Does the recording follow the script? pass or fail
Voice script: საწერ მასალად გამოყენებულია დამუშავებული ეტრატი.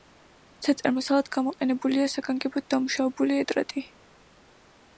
fail